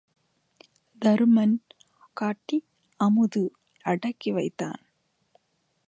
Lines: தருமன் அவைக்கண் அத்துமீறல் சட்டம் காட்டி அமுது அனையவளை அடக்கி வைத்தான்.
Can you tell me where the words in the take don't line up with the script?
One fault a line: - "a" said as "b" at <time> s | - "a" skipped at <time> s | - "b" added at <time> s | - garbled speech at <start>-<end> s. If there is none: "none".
- "அவைக்கண் அத்துமீறல் சட்டம்" skipped at 1.5 s
- "அனையவளை" skipped at 3.4 s